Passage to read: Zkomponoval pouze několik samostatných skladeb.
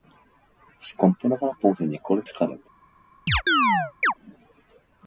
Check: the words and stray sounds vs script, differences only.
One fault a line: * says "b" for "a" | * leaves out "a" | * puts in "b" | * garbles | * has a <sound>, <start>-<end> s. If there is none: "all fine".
* leaves out "samostatných"
* has a chirp, 3.3-4.1 s